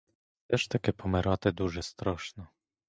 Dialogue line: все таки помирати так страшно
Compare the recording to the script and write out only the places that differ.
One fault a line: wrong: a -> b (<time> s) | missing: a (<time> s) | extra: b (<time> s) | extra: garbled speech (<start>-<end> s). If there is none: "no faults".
extra: ж (0.6 s)
wrong: так -> дуже (1.5 s)